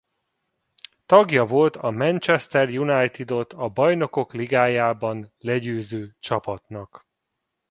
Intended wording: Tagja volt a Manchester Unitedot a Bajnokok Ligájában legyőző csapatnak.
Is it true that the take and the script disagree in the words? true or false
false